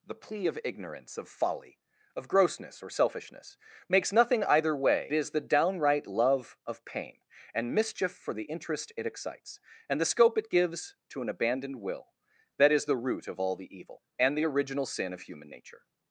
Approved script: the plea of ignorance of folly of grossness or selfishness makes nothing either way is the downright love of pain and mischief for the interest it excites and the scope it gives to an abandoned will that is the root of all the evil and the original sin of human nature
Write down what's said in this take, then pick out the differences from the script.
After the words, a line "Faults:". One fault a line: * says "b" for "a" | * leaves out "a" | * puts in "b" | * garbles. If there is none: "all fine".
the plea of ignorance of folly of grossness or selfishness makes nothing either way is the downright love of pain and mischief for the interest it excites and the scope it gives to an abandoned will that is the root of all the evil and the original sin of human nature
Faults:
all fine